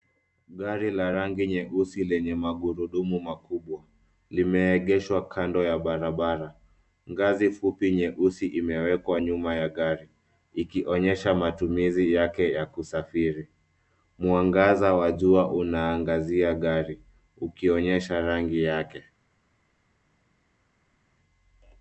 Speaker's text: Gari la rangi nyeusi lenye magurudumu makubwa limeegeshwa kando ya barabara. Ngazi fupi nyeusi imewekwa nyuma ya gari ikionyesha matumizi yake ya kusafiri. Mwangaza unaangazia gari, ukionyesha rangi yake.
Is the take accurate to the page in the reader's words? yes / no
no